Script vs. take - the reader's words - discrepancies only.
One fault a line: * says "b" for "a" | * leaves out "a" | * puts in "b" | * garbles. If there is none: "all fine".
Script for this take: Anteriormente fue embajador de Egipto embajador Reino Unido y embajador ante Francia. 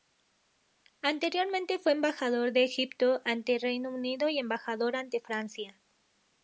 * says "ante" for "embajador"